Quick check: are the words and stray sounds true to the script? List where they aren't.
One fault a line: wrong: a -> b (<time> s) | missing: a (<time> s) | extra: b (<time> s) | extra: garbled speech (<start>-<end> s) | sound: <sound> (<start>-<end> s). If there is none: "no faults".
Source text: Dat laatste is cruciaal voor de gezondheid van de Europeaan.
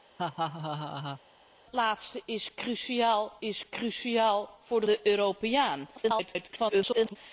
sound: laugh (0.2-1.2 s)
extra: is cruciaal (3.4 s)
missing: gezondheid van (4.9 s)
extra: garbled speech (6.0-7.2 s)